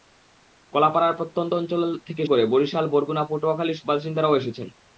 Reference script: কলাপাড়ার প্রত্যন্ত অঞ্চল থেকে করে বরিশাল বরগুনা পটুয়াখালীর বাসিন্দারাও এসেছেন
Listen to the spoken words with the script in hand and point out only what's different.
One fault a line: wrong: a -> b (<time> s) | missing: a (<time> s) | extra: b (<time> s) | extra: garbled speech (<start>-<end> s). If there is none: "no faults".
no faults